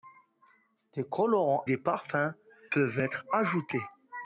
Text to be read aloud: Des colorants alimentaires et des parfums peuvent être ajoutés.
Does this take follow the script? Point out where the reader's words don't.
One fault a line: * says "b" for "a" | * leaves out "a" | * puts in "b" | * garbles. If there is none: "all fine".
* leaves out "alimentaires et"